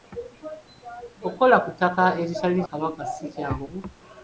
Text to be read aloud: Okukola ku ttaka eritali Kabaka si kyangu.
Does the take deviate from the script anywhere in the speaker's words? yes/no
no